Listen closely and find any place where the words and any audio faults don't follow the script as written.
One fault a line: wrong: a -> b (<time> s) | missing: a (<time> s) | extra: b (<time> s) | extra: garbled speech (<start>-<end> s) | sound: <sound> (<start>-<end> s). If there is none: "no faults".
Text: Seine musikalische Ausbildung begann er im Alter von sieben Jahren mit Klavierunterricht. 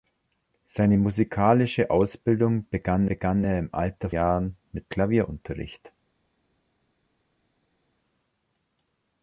extra: begann (3.1 s)
missing: von sieben (4.1 s)